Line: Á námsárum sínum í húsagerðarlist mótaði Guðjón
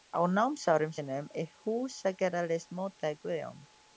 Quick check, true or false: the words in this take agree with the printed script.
true